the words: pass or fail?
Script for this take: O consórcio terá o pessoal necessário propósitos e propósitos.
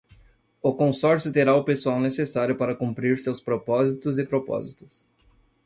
fail